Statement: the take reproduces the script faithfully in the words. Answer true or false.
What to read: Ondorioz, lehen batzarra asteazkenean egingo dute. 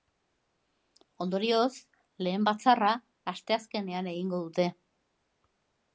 true